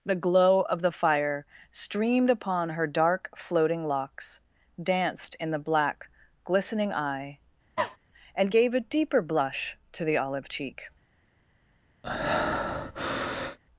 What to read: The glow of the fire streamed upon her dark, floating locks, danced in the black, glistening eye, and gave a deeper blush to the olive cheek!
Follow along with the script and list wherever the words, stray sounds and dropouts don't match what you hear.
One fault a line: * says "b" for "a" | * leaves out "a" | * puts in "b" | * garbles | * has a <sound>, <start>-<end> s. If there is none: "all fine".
* has a cough, 7.8-8.0 s
* has a breath, 12.0-13.6 s